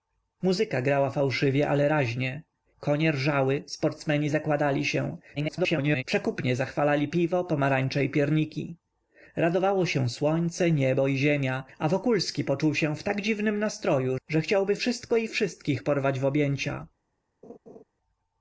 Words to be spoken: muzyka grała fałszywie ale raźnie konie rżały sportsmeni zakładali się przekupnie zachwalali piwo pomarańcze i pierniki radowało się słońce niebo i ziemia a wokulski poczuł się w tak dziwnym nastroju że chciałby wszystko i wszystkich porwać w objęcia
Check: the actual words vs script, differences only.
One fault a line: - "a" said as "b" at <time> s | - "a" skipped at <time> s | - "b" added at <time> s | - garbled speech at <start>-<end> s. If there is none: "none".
- garbled speech at 5.4-6.0 s